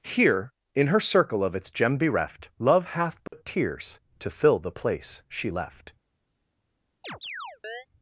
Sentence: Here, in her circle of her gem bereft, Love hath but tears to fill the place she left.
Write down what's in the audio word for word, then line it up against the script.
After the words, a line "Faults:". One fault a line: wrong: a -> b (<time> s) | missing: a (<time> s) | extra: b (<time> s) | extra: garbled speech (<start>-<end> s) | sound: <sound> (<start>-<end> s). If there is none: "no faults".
Here, in her circle of its gem bereft, Love hath but tears to fill the place she left.
Faults:
wrong: her -> its (1.5 s)
sound: dropout (3.3-3.3 s)
sound: chirp (7.0-7.9 s)